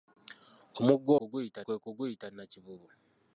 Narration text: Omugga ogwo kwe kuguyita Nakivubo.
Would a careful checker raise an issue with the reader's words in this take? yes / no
yes